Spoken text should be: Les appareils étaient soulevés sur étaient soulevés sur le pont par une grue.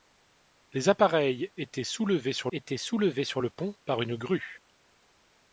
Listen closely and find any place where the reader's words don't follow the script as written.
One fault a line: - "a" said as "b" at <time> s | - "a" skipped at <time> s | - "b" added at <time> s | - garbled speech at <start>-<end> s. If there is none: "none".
none